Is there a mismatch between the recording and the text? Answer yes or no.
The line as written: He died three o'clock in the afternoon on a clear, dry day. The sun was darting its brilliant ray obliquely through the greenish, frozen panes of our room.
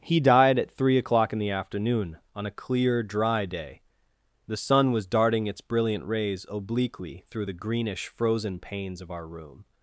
yes